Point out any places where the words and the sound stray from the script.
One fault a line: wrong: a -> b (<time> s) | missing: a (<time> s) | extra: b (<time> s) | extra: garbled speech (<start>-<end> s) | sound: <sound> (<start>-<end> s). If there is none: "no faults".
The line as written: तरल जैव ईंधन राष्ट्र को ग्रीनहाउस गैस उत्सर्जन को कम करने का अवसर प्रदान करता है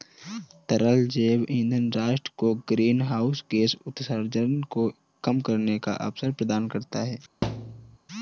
sound: thud (7.4-8.0 s)